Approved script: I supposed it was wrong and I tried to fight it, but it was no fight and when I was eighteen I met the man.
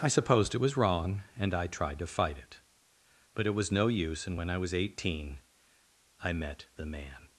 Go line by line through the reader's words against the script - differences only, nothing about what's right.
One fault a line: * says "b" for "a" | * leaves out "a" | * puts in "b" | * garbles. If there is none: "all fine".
* says "use" for "fight"